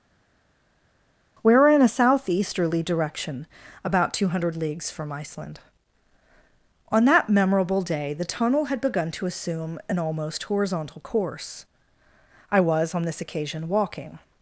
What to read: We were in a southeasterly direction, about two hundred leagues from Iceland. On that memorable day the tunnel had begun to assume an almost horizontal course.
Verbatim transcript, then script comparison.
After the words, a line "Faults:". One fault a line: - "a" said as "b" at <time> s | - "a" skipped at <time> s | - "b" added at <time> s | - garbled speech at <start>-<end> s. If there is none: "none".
We were in a southeasterly direction, about two hundred leagues from Iceland. On that memorable day the tunnel had begun to assume an almost horizontal course. I was on this occasion walking
Faults:
- "I was on this occasion walking" added at 12.5 s